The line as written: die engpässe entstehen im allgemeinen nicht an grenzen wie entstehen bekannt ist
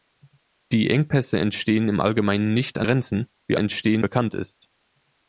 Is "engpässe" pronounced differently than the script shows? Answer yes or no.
no